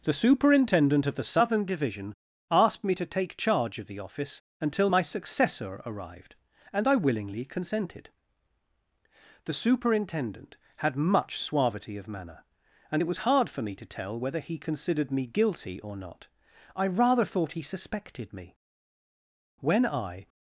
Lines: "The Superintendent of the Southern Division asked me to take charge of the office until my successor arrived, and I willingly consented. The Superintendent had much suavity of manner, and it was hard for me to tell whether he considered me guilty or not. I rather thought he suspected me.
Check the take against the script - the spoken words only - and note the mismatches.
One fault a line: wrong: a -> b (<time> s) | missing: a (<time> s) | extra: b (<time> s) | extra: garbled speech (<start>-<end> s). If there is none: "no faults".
extra: When I (19.6 s)